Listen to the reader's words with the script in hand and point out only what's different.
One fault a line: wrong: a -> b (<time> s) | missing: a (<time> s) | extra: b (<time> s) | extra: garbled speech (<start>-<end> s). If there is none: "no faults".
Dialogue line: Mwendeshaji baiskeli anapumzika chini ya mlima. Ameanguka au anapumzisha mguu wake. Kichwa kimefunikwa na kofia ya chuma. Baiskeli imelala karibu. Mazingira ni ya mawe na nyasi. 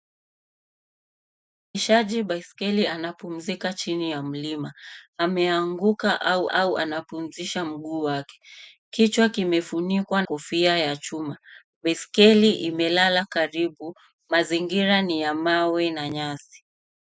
extra: au (6.5 s)
missing: na (10.2 s)